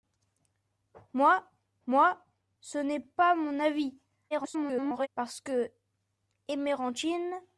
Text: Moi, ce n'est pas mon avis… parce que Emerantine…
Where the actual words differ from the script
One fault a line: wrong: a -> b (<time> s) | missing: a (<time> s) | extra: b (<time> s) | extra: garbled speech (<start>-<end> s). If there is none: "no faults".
extra: moi (1.9 s)
extra: garbled speech (4.3-5.1 s)